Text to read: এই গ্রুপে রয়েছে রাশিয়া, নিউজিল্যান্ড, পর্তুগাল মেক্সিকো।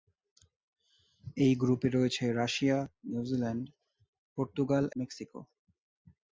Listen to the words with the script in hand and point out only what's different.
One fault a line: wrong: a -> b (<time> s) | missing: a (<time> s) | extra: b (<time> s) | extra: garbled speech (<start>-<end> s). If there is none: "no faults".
no faults